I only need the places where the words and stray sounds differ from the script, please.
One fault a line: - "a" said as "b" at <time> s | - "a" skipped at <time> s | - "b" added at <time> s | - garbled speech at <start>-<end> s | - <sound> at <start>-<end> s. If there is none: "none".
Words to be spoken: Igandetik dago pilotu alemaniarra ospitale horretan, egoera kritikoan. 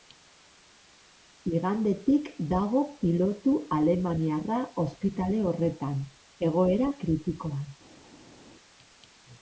none